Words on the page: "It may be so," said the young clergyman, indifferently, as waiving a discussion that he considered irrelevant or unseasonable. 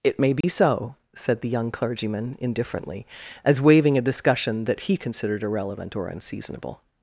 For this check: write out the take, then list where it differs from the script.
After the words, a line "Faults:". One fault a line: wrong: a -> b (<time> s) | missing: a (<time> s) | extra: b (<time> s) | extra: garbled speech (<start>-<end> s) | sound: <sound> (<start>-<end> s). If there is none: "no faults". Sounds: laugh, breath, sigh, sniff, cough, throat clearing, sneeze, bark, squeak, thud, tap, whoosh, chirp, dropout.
"It may be so," said the young clergyman, indifferently, as waiving a discussion that he considered irrelevant or unseasonable.
Faults:
sound: dropout (0.4-0.4 s)